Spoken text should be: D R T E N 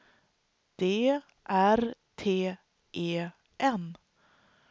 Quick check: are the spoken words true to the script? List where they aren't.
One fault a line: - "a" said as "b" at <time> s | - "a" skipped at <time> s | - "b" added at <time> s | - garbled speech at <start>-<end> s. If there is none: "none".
none